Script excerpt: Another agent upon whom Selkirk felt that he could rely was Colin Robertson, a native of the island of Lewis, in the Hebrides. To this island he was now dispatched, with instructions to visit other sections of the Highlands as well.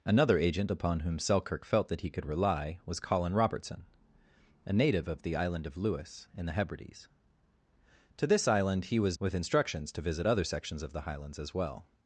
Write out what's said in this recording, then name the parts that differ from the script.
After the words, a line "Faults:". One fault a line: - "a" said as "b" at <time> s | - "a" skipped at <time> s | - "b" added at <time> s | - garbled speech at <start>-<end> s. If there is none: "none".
Another agent upon whom Selkirk felt that he could rely was Colin Robertson, a native of the island of Lewis, in the Hebrides. To this island he was with instructions to visit other sections of the Highlands as well.
Faults:
- "now dispatched" skipped at 9.2 s